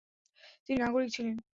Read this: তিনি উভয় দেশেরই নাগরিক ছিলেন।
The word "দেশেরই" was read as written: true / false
false